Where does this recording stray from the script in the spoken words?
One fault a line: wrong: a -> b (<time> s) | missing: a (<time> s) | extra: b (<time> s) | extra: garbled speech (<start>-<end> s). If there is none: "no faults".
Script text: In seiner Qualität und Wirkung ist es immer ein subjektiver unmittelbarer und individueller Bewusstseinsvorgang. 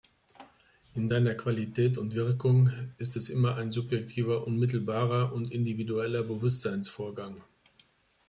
no faults